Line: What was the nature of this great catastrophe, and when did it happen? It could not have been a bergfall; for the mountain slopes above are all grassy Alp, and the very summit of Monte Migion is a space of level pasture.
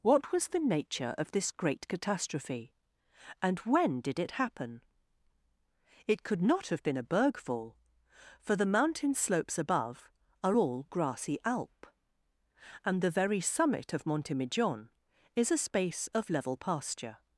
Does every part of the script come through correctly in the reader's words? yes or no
yes